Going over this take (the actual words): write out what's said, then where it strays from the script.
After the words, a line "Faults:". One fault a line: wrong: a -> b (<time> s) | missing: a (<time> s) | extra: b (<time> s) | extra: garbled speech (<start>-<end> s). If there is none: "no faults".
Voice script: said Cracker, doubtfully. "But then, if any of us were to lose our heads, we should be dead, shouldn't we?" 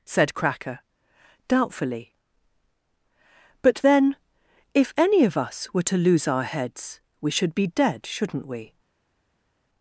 said Cracker, doubtfully. "But then, if any of us were to lose our heads, we should be dead, shouldn't we?"
Faults:
no faults